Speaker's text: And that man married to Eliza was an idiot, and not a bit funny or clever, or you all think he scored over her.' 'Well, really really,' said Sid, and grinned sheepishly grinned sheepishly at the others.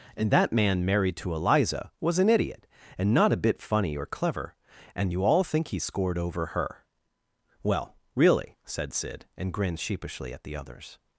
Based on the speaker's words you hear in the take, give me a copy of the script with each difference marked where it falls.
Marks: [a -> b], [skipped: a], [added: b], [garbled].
And that man married to Eliza was an idiot, and not a bit funny or clever, [or -> and] you all think he scored over her.' 'Well, really [skipped: really,'] said Sid, and grinned sheepishly [skipped: grinned sheepishly] at the others.